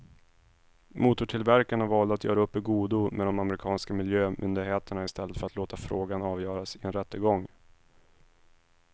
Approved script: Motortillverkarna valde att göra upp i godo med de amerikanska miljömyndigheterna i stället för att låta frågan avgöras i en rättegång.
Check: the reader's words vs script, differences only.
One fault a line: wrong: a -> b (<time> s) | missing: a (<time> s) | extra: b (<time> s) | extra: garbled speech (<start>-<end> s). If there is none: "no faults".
no faults